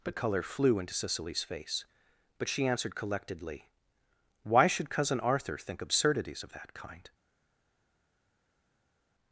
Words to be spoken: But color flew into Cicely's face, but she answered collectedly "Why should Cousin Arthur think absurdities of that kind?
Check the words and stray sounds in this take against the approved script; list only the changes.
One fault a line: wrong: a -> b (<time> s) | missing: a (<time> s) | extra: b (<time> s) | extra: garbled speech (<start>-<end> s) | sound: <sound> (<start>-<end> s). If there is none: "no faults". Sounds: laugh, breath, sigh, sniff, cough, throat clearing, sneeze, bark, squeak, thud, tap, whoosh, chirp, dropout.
no faults